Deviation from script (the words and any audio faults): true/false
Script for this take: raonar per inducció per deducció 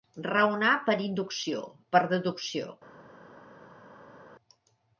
false